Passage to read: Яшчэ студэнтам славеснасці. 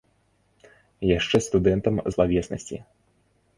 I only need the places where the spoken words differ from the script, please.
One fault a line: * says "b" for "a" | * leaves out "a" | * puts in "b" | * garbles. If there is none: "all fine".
all fine